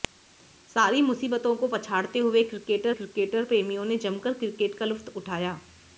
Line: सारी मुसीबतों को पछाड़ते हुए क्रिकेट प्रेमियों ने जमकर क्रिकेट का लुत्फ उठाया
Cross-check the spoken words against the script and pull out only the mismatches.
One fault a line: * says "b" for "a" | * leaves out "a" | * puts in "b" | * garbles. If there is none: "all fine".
* puts in "क्रिकेट"